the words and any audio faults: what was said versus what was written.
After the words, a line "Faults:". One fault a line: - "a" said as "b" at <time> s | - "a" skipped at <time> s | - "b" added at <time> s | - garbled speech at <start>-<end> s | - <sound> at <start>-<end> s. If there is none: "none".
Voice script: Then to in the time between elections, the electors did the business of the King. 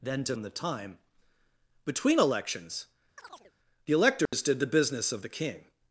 Then to in the time between elections, the electors did the business of the King.
Faults:
- chirp at 3.2-3.5 s
- dropout at 4.3-4.3 s